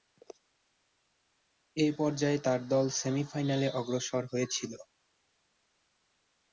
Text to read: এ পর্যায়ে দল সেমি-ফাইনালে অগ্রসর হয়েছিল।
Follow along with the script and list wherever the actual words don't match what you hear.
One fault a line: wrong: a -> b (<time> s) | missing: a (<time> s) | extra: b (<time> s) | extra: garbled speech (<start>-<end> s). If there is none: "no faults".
extra: তার (2.4 s)